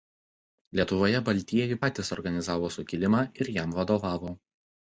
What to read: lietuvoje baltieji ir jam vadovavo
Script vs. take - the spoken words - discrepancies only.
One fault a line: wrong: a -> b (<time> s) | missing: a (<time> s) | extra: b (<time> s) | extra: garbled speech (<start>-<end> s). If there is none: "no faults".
extra: patys organizavo sukilimą (1.8 s)